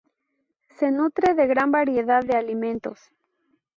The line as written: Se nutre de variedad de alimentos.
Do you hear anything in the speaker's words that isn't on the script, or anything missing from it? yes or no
yes